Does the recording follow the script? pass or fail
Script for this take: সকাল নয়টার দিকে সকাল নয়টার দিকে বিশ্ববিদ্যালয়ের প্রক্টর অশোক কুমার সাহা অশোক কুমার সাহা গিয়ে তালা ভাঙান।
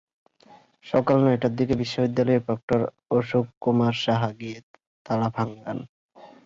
fail